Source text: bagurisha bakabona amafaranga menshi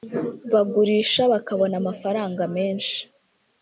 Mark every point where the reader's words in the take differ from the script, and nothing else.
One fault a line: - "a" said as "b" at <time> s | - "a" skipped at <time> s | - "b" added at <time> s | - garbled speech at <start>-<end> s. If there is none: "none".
none